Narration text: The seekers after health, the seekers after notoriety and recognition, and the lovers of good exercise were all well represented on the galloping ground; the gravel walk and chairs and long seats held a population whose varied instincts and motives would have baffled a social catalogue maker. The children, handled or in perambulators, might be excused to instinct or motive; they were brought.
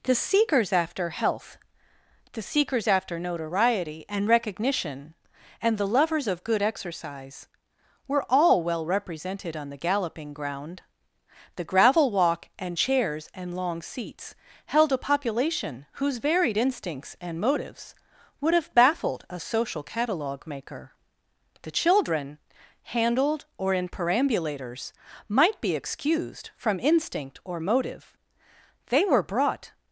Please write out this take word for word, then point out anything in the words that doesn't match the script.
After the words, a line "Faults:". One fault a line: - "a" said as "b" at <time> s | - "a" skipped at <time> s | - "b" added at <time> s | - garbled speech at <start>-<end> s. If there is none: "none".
The seekers after health, the seekers after notoriety and recognition, and the lovers of good exercise were all well represented on the galloping ground; the gravel walk and chairs and long seats held a population whose varied instincts and motives would have baffled a social catalogue maker. The children, handled or in perambulators, might be excused from instinct or motive; they were brought.
Faults:
- "to" said as "from" at 26.6 s